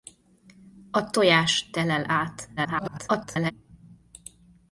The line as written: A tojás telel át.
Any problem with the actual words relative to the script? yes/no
yes